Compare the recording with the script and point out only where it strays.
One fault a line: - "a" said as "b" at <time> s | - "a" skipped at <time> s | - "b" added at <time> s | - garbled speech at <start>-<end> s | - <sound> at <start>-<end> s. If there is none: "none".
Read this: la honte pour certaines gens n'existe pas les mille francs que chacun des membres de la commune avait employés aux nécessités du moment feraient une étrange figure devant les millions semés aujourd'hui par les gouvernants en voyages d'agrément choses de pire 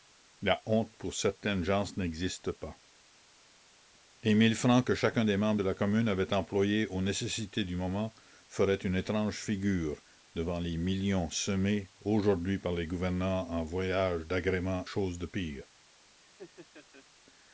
- laugh at 16.2-17.1 s